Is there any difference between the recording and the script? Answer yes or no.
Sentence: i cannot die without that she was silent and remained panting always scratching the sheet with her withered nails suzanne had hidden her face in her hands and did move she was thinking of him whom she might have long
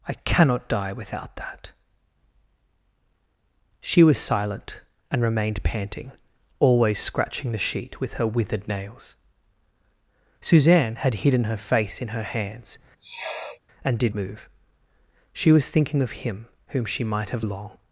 no